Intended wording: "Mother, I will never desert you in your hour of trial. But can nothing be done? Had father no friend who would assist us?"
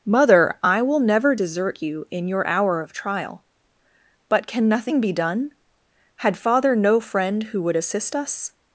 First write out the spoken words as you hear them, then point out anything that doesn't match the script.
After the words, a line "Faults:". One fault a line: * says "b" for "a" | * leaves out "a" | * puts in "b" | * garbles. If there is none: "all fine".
"Mother, I will never desert you in your hour of trial. But can nothing be done? Had father no friend who would assist us?"
Faults:
all fine